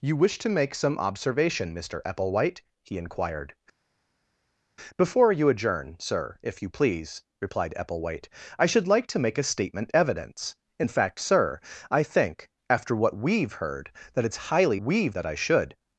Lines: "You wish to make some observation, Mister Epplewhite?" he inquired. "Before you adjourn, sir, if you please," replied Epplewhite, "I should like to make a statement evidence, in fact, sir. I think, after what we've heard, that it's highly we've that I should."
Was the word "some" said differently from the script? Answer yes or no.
no